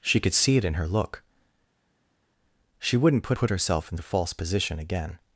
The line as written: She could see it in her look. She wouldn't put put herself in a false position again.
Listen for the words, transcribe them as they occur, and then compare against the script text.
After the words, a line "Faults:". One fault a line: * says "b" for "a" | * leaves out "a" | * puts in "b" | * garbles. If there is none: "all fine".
She could see it in her look. She wouldn't put put herself in a false position again.
Faults:
all fine